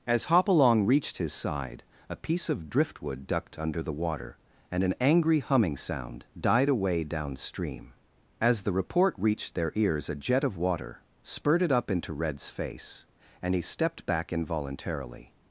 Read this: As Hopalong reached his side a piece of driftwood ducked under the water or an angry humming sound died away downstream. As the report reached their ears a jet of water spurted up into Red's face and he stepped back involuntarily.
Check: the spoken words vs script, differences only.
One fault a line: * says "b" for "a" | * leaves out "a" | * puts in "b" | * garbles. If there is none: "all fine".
* says "and" for "or"